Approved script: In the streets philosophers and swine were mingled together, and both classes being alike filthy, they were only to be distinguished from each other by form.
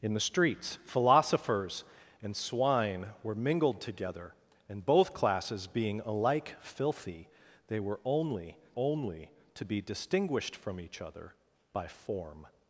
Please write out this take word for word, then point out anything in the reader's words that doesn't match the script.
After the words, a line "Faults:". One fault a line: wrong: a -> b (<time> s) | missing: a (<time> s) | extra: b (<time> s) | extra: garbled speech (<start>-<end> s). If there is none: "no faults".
In the streets philosophers and swine were mingled together, and both classes being alike filthy, they were only only to be distinguished from each other by form.
Faults:
extra: only (8.8 s)